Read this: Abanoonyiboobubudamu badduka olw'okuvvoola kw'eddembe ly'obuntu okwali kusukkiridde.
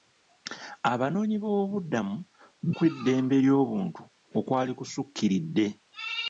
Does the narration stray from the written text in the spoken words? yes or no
yes